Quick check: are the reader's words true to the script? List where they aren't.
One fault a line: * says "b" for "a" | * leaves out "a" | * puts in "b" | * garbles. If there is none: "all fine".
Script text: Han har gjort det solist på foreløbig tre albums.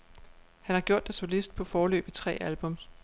all fine